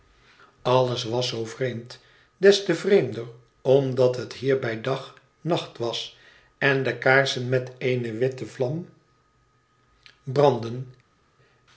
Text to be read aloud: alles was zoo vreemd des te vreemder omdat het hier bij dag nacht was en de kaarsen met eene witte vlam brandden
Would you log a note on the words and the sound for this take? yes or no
no